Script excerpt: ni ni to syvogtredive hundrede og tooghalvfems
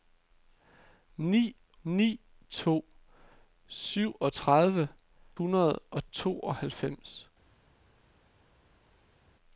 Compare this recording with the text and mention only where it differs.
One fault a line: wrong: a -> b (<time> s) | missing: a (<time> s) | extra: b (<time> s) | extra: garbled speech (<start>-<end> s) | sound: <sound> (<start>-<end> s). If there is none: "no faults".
no faults